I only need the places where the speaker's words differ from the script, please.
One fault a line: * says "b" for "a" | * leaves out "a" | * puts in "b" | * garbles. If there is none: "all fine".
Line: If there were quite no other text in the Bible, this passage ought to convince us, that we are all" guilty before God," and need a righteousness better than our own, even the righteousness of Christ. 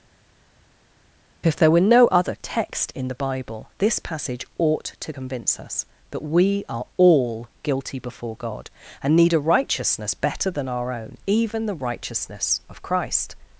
* leaves out "quite"